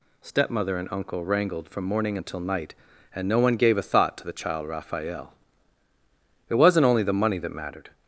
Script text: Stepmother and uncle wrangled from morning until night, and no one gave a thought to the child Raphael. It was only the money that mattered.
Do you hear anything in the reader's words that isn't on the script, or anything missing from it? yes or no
yes